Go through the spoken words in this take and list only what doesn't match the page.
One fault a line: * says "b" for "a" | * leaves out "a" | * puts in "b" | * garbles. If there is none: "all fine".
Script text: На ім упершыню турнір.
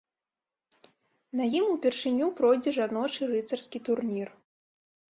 * puts in "пройдзе жаночы рыцарскі"